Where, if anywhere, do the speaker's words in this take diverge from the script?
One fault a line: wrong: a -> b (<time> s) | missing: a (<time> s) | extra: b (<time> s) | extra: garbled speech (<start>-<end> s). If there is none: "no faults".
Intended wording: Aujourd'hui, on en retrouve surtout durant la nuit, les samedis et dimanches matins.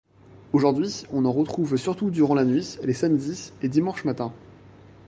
no faults